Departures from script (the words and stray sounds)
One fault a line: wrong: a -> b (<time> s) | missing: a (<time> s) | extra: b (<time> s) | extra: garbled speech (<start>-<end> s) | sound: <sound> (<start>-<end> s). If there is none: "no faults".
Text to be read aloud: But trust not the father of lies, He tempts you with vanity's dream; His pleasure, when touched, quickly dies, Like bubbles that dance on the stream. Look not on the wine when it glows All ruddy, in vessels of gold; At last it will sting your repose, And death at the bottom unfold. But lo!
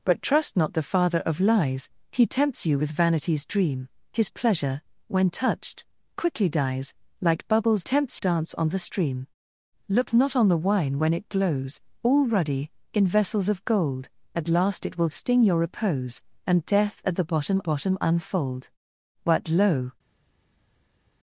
wrong: that -> tempts (7.8 s)
extra: bottom (17.6 s)